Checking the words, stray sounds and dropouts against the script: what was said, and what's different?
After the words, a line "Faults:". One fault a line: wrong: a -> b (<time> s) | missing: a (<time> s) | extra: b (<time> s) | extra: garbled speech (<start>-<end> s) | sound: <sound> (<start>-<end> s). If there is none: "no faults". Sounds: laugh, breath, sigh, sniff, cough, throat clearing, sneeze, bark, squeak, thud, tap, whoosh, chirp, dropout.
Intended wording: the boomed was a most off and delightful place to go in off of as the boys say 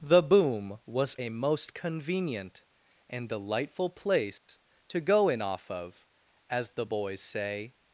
the boom was a most convenient and delightful place to go in off of as the boys say
Faults:
wrong: boomed -> boom (0.2 s)
wrong: off -> convenient (1.7 s)
sound: dropout (4.4-4.5 s)